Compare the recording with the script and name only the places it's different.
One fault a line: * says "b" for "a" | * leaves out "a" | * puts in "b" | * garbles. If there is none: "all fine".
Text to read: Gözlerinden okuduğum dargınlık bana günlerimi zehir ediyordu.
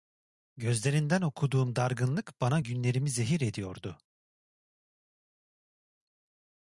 all fine